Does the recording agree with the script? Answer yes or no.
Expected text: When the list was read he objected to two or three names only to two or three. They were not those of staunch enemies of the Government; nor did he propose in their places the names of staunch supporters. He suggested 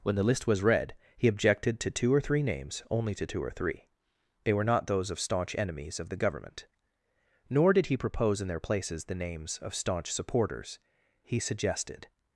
yes